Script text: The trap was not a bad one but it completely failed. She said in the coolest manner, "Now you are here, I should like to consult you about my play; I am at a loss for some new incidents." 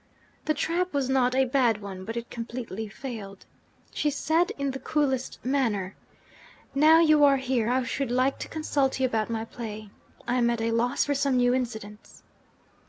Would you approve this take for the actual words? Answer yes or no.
yes